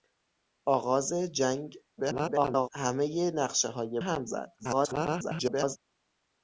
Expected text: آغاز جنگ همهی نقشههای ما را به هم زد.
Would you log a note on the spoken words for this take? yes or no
yes